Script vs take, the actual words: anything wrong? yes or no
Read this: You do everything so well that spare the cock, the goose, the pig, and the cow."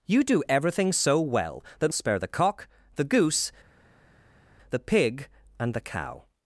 no